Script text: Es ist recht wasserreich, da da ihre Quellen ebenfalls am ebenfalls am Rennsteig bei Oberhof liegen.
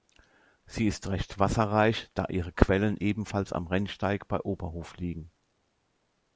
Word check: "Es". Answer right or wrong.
wrong